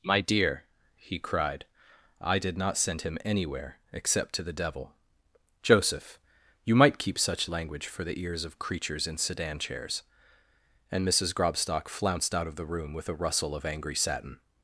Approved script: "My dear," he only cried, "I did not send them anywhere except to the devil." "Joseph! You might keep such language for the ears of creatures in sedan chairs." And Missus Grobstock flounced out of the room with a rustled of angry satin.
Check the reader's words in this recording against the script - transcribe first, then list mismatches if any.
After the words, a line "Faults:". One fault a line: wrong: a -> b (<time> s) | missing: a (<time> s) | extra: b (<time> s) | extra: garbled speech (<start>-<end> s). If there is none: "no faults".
"My dear," he cried, "I did not send him anywhere except to the devil." "Joseph! You might keep such language for the ears of creatures in sedan chairs." And Missus Grobstock flounced out of the room with a rustle of angry satin.
Faults:
missing: only (1.2 s)
wrong: them -> him (3.0 s)
wrong: rustled -> rustle (13.1 s)